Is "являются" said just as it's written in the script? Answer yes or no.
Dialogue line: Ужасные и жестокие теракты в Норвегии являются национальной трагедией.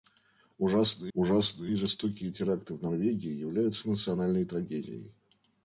yes